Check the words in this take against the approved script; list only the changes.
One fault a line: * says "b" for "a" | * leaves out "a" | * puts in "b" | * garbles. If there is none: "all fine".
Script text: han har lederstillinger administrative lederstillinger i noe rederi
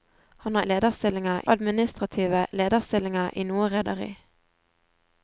all fine